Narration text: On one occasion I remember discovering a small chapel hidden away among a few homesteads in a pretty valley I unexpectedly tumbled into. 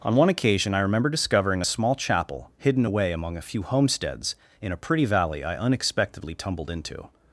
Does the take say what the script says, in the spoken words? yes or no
yes